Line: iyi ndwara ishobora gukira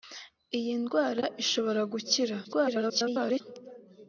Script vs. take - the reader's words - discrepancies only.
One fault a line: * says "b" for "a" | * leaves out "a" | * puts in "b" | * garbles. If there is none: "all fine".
* garbles